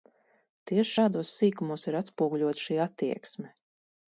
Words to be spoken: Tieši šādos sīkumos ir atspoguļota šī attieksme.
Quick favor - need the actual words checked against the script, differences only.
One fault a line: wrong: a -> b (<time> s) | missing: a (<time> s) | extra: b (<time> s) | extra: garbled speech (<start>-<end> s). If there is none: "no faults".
no faults